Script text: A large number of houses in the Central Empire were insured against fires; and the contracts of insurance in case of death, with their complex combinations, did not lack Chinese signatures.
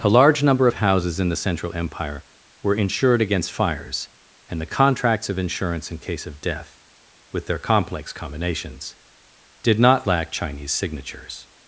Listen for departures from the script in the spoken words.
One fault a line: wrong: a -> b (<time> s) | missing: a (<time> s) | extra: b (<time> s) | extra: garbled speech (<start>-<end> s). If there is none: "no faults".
no faults